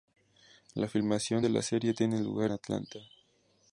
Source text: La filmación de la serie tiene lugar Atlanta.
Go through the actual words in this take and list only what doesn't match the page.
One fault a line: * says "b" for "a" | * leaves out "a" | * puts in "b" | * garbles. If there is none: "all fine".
all fine